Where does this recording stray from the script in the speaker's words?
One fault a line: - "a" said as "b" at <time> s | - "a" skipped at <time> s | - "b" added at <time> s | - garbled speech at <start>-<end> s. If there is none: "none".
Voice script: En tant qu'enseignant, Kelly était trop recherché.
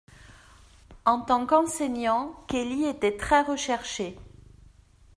- "trop" said as "très" at 3.2 s